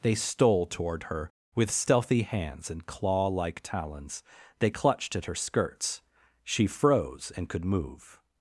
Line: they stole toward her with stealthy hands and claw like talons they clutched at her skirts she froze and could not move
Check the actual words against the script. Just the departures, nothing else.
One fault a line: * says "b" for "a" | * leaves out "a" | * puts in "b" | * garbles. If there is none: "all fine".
* leaves out "not"